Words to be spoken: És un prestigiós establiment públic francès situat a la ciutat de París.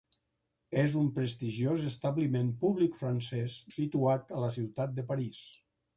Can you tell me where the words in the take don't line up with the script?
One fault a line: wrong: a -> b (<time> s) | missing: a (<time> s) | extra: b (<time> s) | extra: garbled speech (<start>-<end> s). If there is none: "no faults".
no faults